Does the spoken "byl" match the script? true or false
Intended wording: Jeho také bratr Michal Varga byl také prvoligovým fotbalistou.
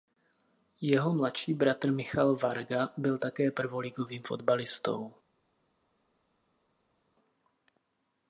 true